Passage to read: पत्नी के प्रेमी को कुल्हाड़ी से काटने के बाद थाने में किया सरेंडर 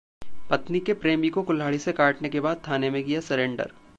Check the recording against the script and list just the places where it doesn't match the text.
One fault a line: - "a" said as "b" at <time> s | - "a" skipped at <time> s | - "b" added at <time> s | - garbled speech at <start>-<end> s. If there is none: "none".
none